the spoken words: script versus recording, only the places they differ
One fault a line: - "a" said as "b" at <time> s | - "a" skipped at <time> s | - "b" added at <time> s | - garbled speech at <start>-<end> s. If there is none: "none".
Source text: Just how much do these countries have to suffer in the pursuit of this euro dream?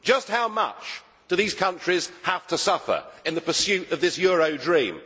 none